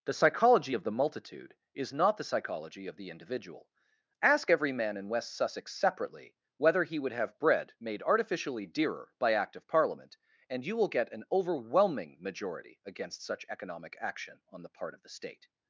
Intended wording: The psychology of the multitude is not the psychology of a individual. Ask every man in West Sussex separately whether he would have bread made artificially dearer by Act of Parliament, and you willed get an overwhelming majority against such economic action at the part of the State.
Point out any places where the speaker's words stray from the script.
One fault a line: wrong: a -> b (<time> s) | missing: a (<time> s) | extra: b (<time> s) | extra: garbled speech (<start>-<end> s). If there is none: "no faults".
wrong: a -> the (2.9 s)
wrong: willed -> will (10.8 s)
wrong: at -> on (14.5 s)